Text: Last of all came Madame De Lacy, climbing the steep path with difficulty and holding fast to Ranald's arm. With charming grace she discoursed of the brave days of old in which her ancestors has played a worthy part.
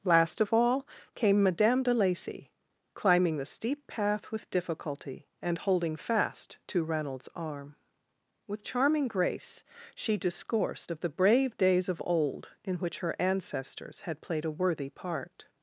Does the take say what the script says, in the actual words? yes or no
no